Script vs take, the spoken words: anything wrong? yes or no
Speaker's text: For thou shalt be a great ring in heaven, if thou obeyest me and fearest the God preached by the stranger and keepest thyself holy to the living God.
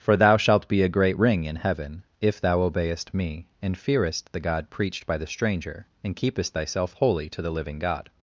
no